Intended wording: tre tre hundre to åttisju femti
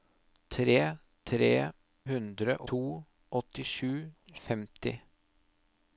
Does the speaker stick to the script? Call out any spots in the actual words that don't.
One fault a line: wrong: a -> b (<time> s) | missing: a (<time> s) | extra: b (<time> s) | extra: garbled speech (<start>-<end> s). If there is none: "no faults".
no faults